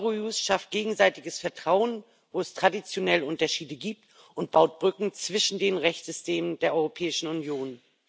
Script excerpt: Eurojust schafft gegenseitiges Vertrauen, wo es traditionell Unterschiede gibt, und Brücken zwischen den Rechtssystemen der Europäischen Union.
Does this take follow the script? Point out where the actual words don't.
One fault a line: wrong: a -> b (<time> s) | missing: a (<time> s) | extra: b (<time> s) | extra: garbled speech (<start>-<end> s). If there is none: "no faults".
extra: baut (4.5 s)